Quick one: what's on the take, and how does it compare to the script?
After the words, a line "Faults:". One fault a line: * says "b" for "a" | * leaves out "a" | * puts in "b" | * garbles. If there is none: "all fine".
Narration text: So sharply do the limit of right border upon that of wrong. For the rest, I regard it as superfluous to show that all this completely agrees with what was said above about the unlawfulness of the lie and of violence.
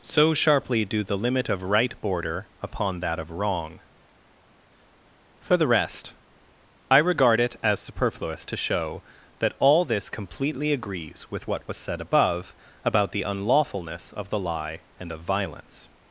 So sharply do the limit of right border upon that of wrong. For the rest, I regard it as superfluous to show that all this completely agrees with what was said above about the unlawfulness of the lie and of violence.
Faults:
all fine